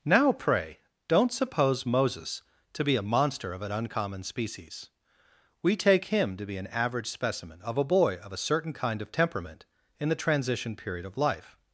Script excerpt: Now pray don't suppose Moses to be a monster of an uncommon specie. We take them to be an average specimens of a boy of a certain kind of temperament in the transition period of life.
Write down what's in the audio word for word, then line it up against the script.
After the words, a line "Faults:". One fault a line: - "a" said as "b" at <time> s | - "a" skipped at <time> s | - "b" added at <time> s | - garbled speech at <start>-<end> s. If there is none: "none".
Now pray don't suppose Moses to be a monster of an uncommon species. We take him to be an average specimen of a boy of a certain kind of temperament in the transition period of life.
Faults:
- "specie" said as "species" at 4.2 s
- "them" said as "him" at 6.0 s
- "specimens" said as "specimen" at 7.0 s